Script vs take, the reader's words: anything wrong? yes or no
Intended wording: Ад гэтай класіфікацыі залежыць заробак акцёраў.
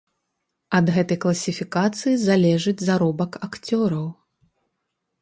no